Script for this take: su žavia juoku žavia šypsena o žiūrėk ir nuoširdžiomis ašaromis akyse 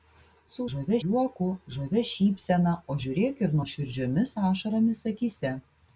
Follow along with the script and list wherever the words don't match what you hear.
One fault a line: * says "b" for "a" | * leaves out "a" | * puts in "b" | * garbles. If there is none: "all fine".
all fine